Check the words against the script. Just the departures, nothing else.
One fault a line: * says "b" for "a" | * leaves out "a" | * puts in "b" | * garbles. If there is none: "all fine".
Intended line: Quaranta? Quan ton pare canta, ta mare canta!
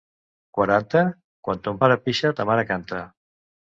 * says "pixa" for "canta"